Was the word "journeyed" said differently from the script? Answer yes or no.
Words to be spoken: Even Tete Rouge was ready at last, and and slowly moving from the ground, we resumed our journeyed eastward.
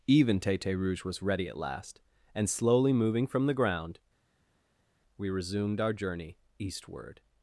yes